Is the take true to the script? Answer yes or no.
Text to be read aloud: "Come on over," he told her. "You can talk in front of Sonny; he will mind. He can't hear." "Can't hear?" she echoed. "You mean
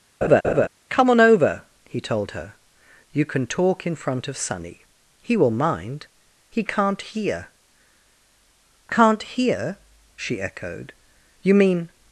yes